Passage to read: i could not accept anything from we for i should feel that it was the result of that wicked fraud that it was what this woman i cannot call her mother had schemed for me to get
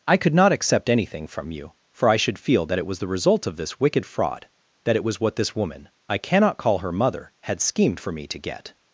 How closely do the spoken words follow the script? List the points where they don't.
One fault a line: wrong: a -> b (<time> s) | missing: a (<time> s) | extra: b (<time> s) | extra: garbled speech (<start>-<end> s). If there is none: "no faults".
wrong: we -> you (1.5 s)
wrong: that -> this (3.6 s)